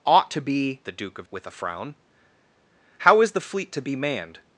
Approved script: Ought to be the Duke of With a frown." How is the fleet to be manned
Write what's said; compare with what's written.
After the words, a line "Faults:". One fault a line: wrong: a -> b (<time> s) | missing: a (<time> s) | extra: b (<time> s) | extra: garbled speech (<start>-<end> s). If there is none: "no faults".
Ought to be the Duke of With a frown." How is the fleet to be manned
Faults:
no faults